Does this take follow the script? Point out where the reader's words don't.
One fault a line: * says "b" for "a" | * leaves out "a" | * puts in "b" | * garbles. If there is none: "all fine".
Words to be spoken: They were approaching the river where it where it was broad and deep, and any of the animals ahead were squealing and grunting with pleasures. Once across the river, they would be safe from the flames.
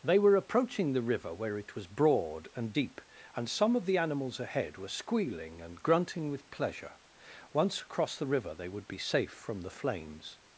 * leaves out "where it"
* says "some" for "any"
* says "pleasure" for "pleasures"